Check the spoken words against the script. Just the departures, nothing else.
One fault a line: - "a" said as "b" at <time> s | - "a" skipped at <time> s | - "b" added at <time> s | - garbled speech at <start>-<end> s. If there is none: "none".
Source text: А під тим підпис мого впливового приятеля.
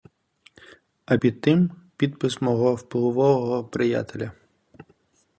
none